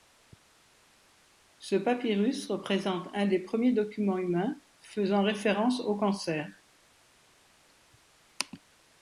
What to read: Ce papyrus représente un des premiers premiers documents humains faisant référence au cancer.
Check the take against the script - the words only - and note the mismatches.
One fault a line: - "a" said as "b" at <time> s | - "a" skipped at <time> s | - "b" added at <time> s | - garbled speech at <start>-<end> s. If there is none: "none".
- "premiers" skipped at 3.7 s